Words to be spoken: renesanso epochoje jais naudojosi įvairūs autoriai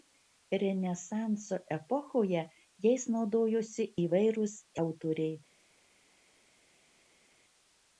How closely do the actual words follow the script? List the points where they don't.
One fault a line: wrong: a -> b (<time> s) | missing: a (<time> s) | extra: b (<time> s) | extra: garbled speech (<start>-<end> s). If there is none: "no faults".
no faults